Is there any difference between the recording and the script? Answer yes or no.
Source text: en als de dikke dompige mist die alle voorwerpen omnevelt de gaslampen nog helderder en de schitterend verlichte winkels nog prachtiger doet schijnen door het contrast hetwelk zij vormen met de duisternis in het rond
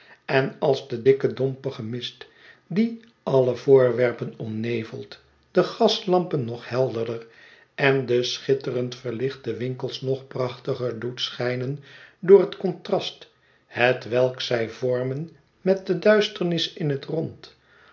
no